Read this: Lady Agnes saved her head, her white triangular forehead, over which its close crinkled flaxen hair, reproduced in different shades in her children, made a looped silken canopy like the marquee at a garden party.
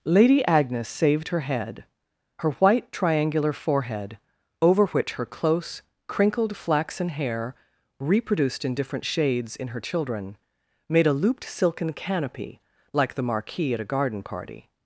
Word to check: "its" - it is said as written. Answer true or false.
false